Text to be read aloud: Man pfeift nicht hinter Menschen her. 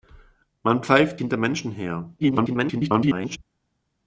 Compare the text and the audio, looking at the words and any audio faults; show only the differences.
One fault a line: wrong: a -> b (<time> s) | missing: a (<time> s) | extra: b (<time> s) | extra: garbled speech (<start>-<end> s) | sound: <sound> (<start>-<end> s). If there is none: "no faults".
missing: nicht (1.2 s)
extra: garbled speech (2.2-3.4 s)